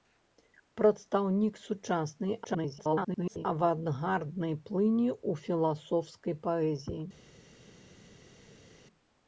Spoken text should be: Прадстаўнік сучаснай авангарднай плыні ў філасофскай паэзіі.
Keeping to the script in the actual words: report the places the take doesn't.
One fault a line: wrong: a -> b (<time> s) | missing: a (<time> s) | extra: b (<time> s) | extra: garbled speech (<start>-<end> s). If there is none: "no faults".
extra: garbled speech (2.4-3.5 s)